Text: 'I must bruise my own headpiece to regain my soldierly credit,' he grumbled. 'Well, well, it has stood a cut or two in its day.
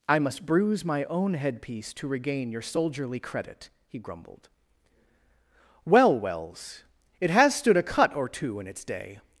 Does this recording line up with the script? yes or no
no